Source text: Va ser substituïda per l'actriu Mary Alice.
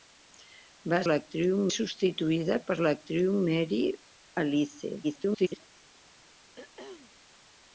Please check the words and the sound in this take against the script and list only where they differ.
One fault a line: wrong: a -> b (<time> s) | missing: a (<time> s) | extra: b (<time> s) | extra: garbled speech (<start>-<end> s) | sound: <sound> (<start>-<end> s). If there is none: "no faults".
wrong: ser -> l'actriu (1.1 s)
extra: garbled speech (5.0-5.7 s)
sound: throat clearing (6.6-7.1 s)